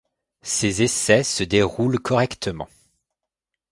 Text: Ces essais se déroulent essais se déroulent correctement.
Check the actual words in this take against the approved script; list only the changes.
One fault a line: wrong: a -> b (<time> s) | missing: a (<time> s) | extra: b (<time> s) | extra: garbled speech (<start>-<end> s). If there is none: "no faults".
missing: essais se déroulent (2.0 s)